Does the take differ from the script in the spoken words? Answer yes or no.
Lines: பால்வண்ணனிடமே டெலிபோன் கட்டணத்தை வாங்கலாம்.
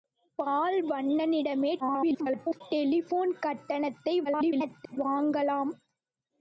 yes